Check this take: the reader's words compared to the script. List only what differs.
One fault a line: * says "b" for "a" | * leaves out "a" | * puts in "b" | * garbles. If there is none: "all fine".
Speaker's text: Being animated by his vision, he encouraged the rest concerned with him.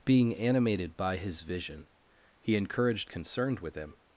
* leaves out "the rest"